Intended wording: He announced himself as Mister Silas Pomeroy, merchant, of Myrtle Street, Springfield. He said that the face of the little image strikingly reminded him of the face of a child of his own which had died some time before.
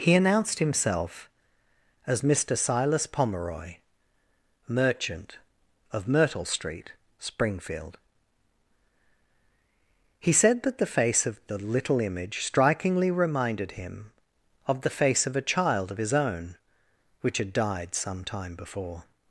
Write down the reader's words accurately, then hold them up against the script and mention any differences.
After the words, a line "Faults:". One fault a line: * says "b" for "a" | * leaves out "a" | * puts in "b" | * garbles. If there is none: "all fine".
He announced himself as Mister Silas Pomeroy, merchant, of Myrtle Street, Springfield. He said that the face of the little image strikingly reminded him of the face of a child of his own which had died some time before.
Faults:
all fine